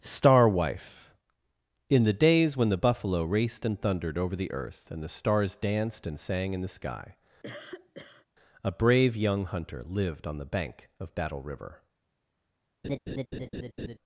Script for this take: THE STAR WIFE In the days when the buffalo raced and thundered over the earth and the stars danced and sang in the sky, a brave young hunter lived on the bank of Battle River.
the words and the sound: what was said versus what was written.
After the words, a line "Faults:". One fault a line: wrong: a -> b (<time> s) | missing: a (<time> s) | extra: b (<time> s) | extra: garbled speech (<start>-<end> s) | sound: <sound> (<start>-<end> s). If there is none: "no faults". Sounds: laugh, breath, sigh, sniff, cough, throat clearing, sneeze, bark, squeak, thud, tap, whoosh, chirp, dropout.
STAR WIFE In the days when the buffalo raced and thundered over the earth and the stars danced and sang in the sky, a brave young hunter lived on the bank of Battle River.
Faults:
missing: THE (0.0 s)
sound: cough (7.4-8.3 s)
sound: laugh (12.8-14.0 s)